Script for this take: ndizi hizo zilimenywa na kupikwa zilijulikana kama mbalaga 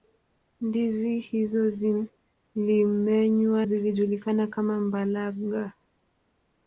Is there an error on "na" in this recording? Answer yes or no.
yes